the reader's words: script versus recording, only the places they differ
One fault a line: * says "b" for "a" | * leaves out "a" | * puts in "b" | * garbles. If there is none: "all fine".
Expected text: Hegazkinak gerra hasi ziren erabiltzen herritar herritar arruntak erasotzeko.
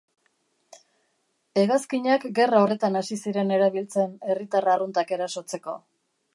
* puts in "horretan"
* leaves out "herritar"